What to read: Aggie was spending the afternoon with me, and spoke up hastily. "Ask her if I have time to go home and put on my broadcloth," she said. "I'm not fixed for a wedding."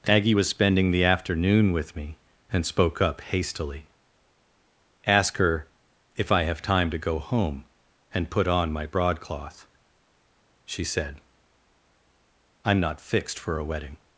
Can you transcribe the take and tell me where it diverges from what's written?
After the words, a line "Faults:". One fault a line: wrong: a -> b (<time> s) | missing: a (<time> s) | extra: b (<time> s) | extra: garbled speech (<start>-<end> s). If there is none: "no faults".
Aggie was spending the afternoon with me, and spoke up hastily. "Ask her if I have time to go home and put on my broadcloth," she said. "I'm not fixed for a wedding."
Faults:
no faults